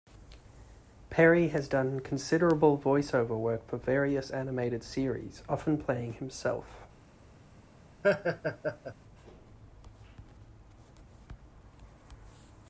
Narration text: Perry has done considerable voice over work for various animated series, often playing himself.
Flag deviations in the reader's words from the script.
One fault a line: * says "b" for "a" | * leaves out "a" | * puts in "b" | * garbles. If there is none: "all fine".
all fine